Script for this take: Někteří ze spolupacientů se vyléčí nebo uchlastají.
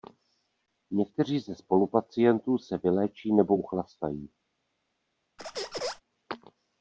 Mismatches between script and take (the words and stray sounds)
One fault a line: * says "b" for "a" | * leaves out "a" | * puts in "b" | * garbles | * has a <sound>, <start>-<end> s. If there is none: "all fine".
* has a squeak, 5.4-6.0 s